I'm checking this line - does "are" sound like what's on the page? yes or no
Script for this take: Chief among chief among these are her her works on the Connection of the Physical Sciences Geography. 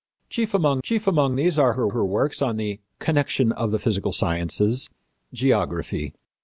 yes